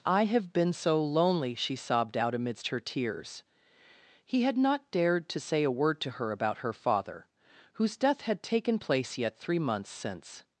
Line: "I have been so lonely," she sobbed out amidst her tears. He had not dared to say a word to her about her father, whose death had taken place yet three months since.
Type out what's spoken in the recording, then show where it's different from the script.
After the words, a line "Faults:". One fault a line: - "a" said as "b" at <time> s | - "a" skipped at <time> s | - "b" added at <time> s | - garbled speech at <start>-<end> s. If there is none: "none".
"I have been so lonely," she sobbed out amidst her tears. He had not dared to say a word to her about her father, whose death had taken place yet three months since.
Faults:
none